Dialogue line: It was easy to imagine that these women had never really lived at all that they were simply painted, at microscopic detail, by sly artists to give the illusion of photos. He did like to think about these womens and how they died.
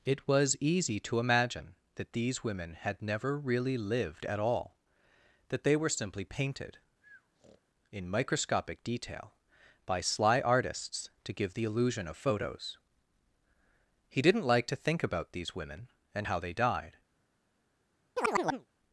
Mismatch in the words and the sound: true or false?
true